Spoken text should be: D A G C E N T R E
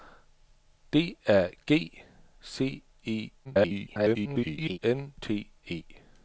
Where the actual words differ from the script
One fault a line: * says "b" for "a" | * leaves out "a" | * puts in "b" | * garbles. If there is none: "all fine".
* garbles
* leaves out "R"